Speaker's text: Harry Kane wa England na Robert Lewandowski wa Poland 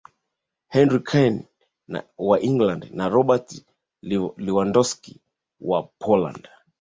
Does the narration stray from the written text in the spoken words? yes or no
no